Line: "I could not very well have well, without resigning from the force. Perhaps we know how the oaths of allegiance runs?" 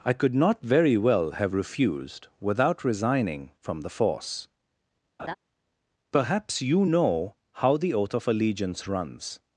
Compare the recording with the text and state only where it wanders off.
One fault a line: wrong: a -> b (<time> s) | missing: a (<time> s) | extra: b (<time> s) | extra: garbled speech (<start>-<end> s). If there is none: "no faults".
wrong: well -> refused (1.5 s)
wrong: we -> you (6.6 s)
wrong: oaths -> oath (7.9 s)